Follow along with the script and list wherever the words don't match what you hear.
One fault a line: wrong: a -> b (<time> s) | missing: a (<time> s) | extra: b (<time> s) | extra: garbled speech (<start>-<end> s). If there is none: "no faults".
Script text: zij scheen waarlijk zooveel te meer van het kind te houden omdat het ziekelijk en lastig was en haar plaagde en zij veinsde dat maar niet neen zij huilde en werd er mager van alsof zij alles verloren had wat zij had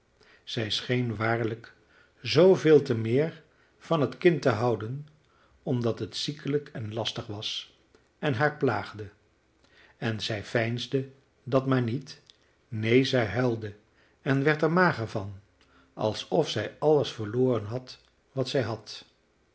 no faults